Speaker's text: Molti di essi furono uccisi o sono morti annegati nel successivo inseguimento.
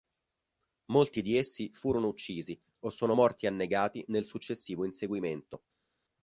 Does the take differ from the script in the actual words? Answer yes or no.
no